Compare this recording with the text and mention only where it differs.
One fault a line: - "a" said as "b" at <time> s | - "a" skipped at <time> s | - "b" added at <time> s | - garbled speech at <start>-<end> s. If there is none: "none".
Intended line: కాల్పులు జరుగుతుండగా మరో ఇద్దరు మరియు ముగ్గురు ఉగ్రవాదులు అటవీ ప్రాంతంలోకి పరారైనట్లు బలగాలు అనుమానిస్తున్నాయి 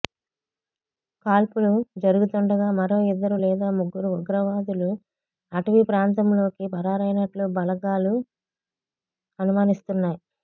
- "మరియు" said as "లేదా" at 3.4 s